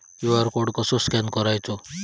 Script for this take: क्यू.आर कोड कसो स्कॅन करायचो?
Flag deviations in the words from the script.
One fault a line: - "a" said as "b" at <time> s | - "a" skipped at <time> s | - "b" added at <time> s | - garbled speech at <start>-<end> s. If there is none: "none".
none